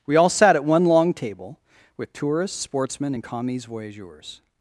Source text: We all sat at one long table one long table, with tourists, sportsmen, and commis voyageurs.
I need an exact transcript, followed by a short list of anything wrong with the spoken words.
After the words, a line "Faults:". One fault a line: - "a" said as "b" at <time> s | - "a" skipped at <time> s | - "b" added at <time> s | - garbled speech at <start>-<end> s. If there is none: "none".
We all sat at one long table, with tourists, sportsmen, and commis voyageurs.
Faults:
- "one long table" skipped at 1.6 s